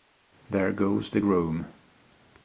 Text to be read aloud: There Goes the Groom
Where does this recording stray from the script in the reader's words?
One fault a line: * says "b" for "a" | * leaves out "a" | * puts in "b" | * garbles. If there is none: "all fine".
all fine